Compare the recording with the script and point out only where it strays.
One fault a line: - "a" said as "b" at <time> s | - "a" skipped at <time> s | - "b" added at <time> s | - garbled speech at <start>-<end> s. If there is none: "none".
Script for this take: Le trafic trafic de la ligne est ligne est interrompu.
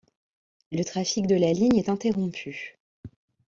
- "trafic" skipped at 1.3 s
- "ligne est" skipped at 1.9 s